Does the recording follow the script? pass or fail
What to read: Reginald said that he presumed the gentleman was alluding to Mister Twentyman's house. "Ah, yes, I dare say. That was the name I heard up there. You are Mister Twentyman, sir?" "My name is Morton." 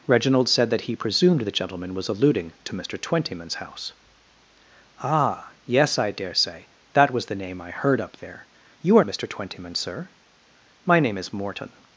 pass